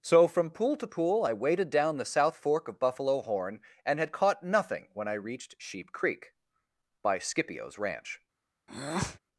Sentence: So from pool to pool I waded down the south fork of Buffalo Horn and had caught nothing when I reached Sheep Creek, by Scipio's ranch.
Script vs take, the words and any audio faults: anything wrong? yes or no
yes